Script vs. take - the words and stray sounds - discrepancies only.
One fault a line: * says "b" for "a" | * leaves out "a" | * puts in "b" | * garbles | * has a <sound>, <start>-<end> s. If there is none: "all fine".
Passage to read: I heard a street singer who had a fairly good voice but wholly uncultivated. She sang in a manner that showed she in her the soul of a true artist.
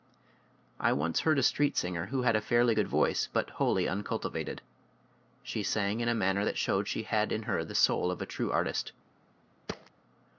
* puts in "once"
* puts in "had"
* has a thud, 9.7-9.9 s